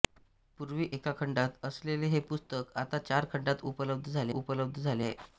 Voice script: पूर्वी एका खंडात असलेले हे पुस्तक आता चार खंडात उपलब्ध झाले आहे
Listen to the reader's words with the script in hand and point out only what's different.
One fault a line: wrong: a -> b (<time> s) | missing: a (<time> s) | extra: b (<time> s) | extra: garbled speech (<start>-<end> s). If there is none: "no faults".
extra: उपलब्ध झाले (4.3 s)